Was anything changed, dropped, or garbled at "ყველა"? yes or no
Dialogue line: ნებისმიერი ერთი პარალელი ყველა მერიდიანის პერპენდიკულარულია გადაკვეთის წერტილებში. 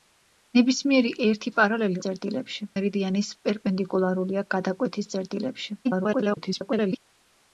yes